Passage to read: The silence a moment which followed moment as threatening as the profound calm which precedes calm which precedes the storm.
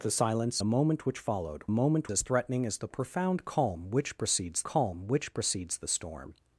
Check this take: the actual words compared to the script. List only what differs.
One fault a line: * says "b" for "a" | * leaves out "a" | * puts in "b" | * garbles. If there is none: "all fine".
all fine